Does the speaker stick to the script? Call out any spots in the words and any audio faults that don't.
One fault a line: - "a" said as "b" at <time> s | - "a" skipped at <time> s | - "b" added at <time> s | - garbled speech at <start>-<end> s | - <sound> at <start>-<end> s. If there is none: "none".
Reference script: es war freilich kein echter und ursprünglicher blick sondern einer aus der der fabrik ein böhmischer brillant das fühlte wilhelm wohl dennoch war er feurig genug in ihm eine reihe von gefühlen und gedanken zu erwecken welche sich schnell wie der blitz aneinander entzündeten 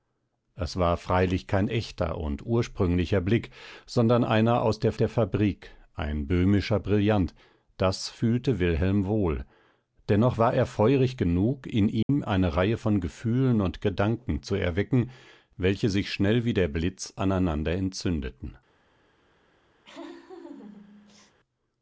- dropout at 12.0-12.1 s
- laugh at 19.8-21.4 s